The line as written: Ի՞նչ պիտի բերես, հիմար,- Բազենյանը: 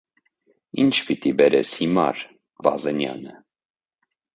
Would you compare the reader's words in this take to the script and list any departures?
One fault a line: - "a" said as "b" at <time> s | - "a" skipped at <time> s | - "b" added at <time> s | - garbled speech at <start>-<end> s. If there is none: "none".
none